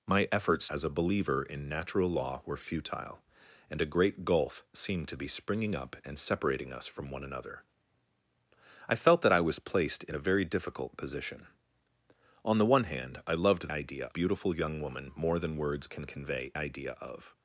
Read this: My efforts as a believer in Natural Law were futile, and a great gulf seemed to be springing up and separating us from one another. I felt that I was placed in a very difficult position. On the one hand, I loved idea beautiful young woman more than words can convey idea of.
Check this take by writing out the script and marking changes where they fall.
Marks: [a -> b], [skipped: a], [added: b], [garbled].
My efforts as a believer in Natural Law were futile, and a great gulf seemed to be springing up and separating us from one another. I felt that I was placed in a very difficult position. On the one hand, I loved idea beautiful young woman more than words can convey idea of.